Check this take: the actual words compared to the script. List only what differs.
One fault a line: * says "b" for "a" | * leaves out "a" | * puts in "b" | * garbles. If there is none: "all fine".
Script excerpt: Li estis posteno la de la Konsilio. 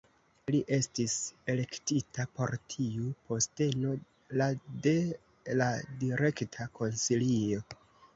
* puts in "elektita por tiu"
* puts in "Direkta"